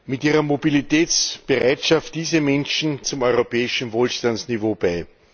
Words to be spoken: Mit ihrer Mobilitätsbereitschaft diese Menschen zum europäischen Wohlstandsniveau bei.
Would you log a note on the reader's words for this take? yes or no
no